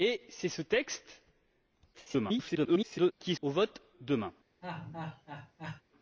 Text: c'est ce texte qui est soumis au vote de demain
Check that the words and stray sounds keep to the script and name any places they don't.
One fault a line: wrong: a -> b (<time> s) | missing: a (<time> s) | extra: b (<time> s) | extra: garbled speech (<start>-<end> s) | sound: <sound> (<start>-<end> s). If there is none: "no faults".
extra: garbled speech (1.9-3.1 s)
missing: soumis (3.3 s)
missing: de (3.8 s)
sound: laugh (4.6-5.8 s)